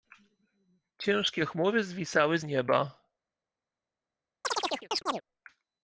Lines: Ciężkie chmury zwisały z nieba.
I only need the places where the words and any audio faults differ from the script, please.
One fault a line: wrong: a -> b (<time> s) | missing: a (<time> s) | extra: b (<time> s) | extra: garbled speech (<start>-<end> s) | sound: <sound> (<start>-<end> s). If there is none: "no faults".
sound: chirp (4.4-5.2 s)